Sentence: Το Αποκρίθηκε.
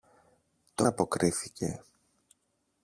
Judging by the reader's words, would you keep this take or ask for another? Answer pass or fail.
pass